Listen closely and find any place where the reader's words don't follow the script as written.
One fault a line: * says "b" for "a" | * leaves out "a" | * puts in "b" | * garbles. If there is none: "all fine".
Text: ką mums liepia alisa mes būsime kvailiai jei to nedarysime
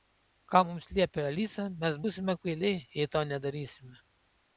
all fine